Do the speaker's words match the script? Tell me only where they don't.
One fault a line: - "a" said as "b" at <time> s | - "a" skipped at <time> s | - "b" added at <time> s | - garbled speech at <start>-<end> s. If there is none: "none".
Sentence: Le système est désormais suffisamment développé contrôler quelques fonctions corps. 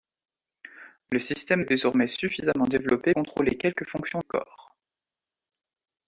none